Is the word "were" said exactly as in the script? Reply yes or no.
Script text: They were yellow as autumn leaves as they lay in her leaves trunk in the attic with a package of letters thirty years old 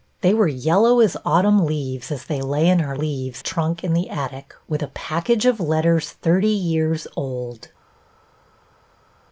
yes